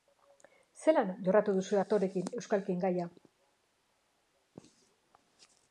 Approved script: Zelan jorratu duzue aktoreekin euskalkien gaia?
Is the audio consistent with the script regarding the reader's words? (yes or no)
yes